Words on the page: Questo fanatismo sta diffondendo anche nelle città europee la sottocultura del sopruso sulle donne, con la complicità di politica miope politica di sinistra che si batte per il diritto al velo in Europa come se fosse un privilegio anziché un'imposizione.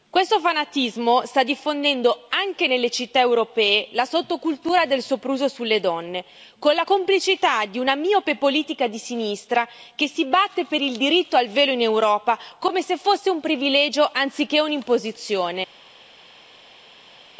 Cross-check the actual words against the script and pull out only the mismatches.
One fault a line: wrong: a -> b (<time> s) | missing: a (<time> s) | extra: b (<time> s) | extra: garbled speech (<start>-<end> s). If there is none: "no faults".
wrong: politica -> una (7.8 s)